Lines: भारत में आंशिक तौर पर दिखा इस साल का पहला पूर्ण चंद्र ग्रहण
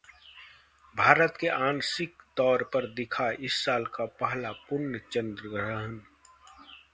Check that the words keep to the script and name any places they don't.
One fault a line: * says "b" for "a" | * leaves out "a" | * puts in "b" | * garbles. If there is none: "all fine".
all fine